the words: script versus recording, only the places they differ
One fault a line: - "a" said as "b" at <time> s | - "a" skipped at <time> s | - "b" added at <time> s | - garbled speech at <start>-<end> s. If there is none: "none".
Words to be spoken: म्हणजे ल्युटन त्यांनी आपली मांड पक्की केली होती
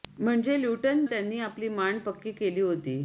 none